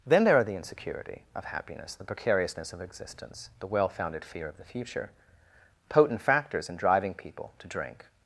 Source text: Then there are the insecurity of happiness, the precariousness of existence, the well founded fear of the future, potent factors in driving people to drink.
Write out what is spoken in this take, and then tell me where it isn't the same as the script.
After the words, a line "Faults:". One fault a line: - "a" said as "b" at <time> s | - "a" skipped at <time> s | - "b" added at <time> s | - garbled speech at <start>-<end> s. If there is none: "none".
Then there are the insecurity of happiness, the precariousness of existence, the well founded fear of the future, potent factors in driving people to drink.
Faults:
none